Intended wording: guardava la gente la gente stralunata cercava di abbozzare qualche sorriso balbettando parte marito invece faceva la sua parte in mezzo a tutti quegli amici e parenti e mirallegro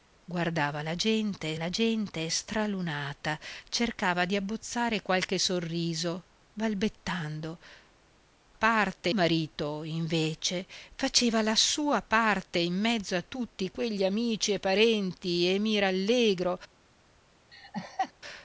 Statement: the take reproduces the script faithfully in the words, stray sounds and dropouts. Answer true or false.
false